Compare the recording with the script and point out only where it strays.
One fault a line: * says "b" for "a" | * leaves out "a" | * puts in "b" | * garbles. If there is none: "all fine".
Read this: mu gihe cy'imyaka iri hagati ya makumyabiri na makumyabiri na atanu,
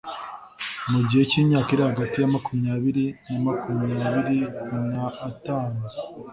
all fine